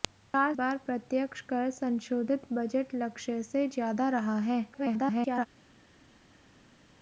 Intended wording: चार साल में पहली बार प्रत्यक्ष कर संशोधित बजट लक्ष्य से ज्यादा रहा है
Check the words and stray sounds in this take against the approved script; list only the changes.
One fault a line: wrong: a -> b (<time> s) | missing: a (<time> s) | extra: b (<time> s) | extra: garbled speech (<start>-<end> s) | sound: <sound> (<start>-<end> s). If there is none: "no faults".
missing: साल में पहली (0.5 s)
extra: garbled speech (4.7-5.5 s)